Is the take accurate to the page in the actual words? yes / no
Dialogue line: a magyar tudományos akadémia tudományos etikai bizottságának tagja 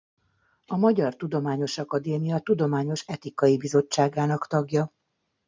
yes